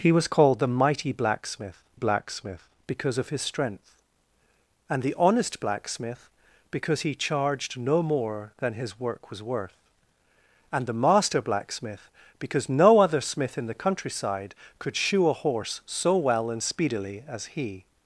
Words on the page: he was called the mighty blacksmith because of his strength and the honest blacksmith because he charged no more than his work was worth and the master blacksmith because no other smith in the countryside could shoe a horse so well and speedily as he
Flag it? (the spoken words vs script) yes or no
yes